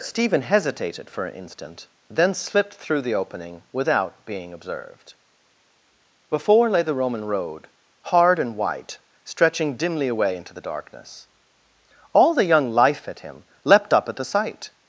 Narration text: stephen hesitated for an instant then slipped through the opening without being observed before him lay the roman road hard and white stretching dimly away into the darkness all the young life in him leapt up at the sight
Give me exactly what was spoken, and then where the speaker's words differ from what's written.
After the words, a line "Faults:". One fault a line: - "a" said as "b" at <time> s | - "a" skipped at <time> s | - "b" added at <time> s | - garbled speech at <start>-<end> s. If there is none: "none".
stephen hesitated for an instant then slipped through the opening without being observed before lay the roman road hard and white stretching dimly away into the darkness all the young life at him leapt up at the sight
Faults:
- "him" skipped at 6.7 s
- "in" said as "at" at 13.1 s